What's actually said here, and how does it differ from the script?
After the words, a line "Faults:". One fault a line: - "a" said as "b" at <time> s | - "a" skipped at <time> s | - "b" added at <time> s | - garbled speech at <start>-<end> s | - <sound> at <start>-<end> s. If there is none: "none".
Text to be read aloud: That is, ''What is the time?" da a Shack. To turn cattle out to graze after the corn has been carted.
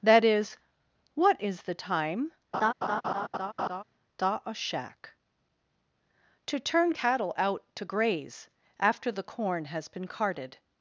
That is, ''What is the time?" da a Shack. To turn cattle out to graze after the corn has been carted.
Faults:
- laugh at 2.5-3.8 s